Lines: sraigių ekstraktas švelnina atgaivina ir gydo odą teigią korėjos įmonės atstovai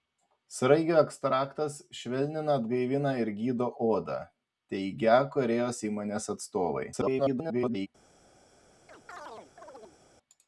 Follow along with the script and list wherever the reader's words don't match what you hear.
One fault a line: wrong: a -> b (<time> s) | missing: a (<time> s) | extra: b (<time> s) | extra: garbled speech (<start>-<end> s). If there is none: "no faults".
extra: garbled speech (6.9-7.9 s)